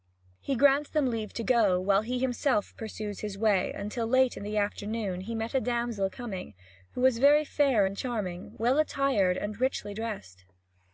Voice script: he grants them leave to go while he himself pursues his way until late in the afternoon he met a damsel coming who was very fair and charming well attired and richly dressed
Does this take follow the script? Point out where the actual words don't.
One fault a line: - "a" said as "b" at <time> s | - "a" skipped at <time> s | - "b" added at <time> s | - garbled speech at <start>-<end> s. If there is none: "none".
none